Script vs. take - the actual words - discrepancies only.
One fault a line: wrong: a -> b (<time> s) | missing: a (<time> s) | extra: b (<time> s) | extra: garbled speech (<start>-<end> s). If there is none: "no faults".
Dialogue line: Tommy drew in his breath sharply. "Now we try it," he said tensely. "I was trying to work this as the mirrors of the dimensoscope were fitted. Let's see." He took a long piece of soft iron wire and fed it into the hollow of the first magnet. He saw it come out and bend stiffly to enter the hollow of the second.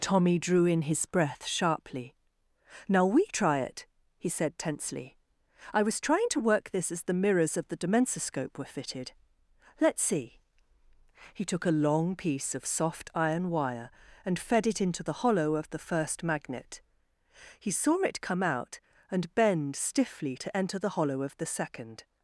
no faults